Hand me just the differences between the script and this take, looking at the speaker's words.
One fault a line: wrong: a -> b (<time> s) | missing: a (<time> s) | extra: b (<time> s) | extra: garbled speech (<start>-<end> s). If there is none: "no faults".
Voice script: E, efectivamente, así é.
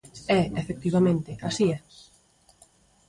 no faults